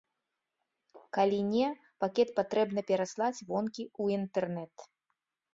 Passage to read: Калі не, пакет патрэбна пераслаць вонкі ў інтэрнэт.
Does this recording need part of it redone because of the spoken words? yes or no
no